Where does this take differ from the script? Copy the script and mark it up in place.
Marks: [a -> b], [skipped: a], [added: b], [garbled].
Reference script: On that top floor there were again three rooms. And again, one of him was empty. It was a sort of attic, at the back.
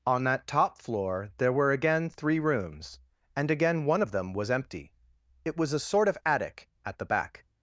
On that top floor there were again three rooms. And again, one of [him -> them] was empty. It was a sort of attic, at the back.